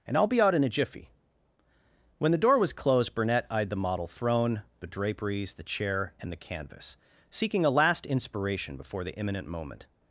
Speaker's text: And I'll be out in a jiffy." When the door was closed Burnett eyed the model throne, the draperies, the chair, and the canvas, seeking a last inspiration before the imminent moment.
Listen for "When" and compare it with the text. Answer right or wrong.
right